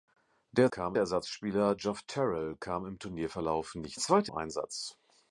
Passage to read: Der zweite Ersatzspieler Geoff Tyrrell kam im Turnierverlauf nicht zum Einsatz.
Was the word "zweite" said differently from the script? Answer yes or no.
yes